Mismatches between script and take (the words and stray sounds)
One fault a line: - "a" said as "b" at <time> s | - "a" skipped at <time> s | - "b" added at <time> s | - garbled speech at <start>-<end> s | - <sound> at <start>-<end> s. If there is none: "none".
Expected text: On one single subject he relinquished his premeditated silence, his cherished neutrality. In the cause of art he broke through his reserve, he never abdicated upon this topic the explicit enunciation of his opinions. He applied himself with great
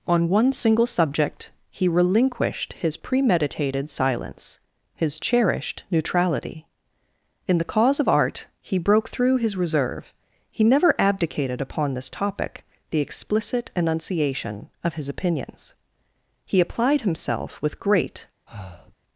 - breath at 18.5-19.0 s